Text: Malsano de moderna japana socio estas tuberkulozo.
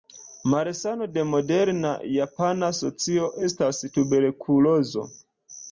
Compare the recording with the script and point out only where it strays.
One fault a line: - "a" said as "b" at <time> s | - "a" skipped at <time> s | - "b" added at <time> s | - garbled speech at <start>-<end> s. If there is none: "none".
none